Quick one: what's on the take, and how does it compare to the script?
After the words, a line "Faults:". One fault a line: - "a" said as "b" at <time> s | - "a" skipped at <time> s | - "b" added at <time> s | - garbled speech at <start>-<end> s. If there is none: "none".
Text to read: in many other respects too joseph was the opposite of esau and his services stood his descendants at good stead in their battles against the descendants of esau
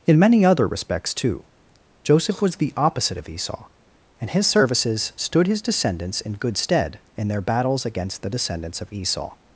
in many other respects too joseph was the opposite of esau and his services stood his descendants in good stead in their battles against the descendants of esau
Faults:
- "at" said as "in" at 6.2 s